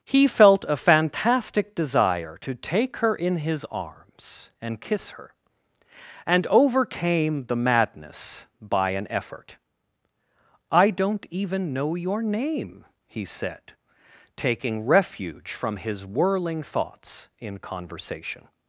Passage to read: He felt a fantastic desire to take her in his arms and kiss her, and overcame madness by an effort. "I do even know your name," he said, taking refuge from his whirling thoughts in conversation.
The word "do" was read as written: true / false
false